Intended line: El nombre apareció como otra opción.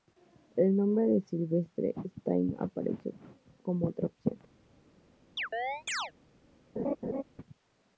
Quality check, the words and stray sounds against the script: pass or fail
fail